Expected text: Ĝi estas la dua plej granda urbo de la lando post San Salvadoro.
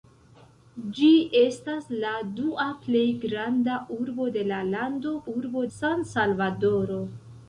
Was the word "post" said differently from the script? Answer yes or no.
yes